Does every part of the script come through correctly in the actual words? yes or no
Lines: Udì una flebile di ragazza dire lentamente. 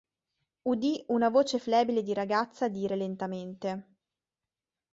no